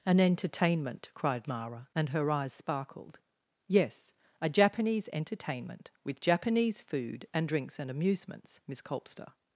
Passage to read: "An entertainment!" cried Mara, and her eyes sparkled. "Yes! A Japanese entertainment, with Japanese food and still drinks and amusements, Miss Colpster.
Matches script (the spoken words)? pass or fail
fail